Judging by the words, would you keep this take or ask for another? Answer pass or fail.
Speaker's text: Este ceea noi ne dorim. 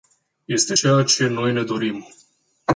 fail